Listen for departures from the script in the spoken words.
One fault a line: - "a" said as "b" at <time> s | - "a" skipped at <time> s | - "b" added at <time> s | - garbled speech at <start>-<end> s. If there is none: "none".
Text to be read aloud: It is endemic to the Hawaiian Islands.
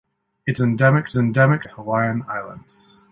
- "is" skipped at 0.6 s
- "the" said as "endemic" at 1.2 s